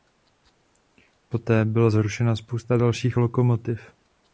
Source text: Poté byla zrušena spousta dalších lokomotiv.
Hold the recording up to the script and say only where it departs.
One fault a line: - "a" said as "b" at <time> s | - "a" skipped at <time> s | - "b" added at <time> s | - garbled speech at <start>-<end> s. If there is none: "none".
none